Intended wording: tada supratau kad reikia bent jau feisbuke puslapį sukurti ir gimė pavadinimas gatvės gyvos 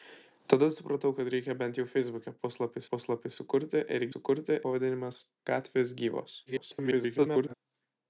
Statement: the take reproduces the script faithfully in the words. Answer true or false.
false